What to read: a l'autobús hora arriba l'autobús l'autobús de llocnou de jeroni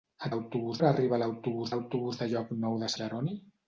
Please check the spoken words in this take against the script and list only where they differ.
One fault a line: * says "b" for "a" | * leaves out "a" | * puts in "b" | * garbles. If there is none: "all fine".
all fine